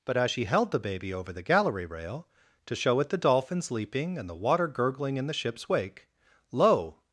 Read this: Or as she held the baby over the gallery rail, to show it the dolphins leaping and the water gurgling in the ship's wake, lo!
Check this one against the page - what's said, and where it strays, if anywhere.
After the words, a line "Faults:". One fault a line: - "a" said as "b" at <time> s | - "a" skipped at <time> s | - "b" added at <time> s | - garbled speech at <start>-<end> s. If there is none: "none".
But as she held the baby over the gallery rail, to show it the dolphins leaping and the water gurgling in the ship's wake, lo!
Faults:
- "Or" said as "But" at 0.1 s